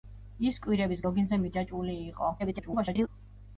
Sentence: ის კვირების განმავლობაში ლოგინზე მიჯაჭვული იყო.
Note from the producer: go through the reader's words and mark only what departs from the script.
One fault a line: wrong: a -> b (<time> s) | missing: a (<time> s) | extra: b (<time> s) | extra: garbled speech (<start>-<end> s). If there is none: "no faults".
missing: განმავლობაში (1.0 s)
extra: garbled speech (2.4-3.1 s)